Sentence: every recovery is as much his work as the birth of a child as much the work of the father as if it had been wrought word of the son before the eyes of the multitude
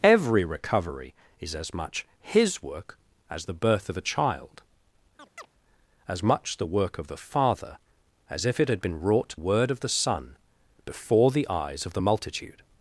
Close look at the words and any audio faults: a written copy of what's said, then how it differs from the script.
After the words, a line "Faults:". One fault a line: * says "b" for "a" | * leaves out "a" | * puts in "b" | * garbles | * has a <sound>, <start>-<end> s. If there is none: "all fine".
every recovery is as much his work as the birth of a child as much the work of the father as if it had been wrought word of the son before the eyes of the multitude
Faults:
* has a chirp, 5.2-5.5 s